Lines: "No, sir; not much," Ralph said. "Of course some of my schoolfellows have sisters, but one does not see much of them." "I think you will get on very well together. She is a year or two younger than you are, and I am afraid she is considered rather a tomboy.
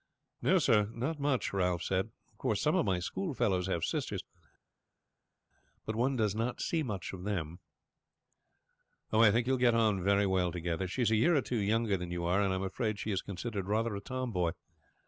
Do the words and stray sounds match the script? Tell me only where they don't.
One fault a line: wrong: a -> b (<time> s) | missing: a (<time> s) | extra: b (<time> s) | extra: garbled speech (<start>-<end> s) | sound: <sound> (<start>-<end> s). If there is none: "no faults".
no faults